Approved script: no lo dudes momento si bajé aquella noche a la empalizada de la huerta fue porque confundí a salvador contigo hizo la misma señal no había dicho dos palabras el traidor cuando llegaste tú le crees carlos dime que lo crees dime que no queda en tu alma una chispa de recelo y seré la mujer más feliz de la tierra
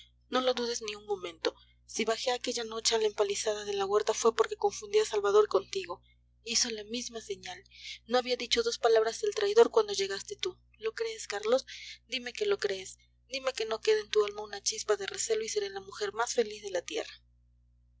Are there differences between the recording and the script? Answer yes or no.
yes